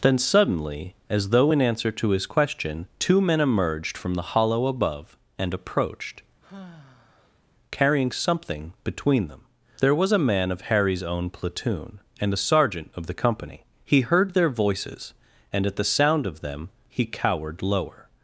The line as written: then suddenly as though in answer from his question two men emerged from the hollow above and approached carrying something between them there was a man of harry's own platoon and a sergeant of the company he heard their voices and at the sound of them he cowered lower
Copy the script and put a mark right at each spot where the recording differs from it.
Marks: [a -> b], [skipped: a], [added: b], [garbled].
then suddenly as though in answer [from -> to] his question two men emerged from the hollow above and approached carrying something between them there was a man of harry's own platoon and a sergeant of the company he heard their voices and at the sound of them he cowered lower